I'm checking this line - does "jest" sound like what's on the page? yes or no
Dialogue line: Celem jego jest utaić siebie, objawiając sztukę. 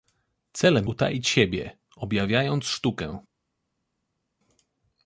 no